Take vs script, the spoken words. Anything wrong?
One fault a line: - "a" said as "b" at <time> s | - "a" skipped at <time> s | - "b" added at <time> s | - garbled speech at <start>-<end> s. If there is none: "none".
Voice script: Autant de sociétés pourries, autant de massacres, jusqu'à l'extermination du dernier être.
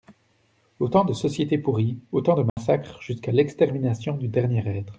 none